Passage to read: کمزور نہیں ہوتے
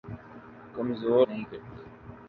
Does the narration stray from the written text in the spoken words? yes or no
no